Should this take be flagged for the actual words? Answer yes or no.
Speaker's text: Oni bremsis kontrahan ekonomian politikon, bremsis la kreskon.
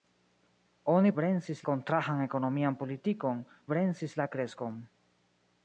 no